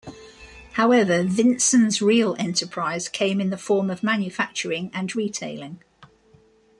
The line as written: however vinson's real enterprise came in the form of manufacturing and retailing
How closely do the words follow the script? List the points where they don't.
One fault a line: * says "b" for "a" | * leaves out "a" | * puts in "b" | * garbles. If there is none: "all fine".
all fine